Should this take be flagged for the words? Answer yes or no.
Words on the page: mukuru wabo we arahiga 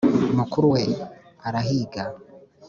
yes